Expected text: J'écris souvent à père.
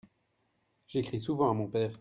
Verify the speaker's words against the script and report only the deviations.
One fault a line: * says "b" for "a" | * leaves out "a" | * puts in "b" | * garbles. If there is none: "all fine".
* puts in "mon"